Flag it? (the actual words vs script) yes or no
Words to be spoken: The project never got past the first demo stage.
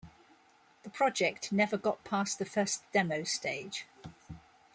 no